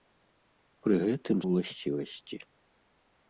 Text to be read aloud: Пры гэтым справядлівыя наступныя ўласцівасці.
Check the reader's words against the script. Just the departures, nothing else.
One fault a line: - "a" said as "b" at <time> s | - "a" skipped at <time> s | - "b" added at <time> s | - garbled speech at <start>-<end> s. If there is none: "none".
- "справядлівыя наступныя" skipped at 1.4 s